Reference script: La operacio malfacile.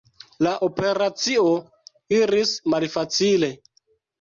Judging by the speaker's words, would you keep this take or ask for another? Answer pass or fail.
fail